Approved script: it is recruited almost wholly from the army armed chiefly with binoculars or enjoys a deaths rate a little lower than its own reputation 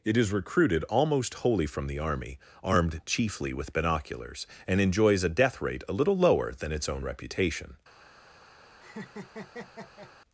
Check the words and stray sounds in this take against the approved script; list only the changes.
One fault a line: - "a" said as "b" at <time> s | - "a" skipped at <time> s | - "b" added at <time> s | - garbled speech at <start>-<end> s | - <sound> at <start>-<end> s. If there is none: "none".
- "or" said as "and" at 4.7 s
- "deaths" said as "death" at 5.3 s
- laugh at 8.8-10.1 s